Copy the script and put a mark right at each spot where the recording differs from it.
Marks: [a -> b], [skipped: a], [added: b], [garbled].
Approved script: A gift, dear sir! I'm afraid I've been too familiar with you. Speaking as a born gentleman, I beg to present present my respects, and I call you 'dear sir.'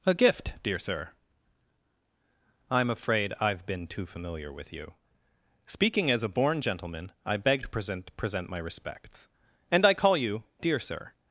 A gift, dear sir! I'm afraid I've been too familiar with you. Speaking as a born gentleman, I beg to present present my respects, and I call you 'dear sir.'